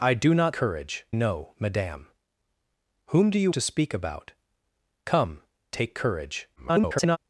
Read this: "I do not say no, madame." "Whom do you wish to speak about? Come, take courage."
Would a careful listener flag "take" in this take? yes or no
no